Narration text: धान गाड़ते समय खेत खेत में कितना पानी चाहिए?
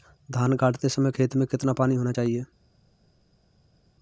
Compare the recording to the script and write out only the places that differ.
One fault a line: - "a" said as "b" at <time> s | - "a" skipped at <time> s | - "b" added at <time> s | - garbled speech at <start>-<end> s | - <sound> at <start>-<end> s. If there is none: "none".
- "खेत" skipped at 1.4 s
- "होना" added at 2.0 s